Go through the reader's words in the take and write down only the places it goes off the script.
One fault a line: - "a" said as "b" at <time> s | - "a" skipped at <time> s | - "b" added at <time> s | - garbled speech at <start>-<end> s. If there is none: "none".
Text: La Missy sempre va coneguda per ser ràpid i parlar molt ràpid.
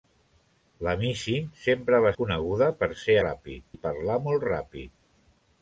none